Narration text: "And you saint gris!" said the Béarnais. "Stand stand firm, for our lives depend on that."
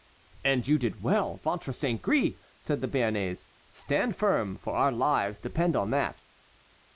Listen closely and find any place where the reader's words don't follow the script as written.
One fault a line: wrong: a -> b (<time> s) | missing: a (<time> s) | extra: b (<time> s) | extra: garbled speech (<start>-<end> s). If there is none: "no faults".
extra: did well ventre (0.8 s)
missing: stand (4.1 s)